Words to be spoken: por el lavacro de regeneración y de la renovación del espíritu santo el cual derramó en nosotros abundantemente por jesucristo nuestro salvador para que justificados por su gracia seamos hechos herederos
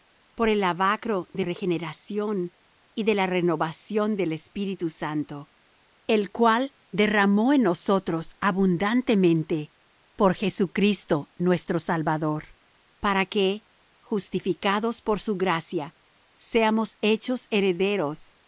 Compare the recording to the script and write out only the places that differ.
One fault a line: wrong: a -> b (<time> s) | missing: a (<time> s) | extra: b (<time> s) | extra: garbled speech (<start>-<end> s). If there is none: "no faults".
no faults